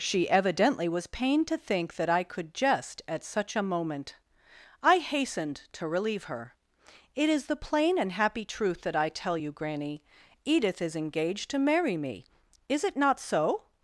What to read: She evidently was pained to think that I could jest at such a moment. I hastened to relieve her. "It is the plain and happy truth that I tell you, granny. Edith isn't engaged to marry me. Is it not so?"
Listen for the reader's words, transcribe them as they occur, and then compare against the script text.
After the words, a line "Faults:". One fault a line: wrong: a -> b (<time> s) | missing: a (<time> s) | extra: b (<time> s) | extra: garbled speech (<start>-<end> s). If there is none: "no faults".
She evidently was pained to think that I could jest at such a moment. I hastened to relieve her. "It is the plain and happy truth that I tell you, granny. Edith is engaged to marry me. Is it not so?"
Faults:
wrong: isn't -> is (10.8 s)